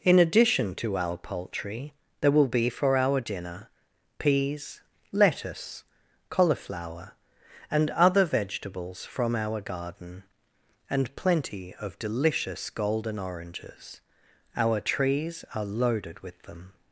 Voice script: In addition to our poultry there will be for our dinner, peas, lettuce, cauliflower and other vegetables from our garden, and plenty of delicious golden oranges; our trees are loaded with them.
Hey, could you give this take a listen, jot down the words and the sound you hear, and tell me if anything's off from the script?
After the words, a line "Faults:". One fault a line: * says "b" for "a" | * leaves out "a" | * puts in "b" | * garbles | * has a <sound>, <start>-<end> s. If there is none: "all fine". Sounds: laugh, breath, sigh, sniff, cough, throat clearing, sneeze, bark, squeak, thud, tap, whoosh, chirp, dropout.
In addition to our poultry there will be for our dinner, peas, lettuce, cauliflower and other vegetables from our garden, and plenty of delicious golden oranges; our trees are loaded with them.
Faults:
all fine